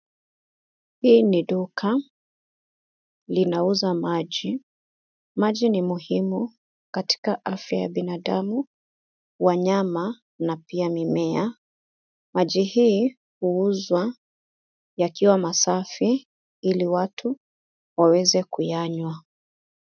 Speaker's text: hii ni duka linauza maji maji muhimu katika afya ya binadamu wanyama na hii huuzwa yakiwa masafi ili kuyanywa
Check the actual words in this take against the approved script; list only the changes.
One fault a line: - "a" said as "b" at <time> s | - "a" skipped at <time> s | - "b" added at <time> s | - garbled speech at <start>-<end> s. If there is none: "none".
- "ni" added at 5.7 s
- "pia mimea maji" added at 10.6 s
- "watu waweze" added at 16.9 s